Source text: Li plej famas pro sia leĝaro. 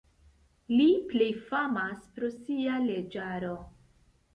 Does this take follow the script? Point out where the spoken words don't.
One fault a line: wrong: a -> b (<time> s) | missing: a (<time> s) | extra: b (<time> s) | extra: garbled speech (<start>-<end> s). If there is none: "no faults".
no faults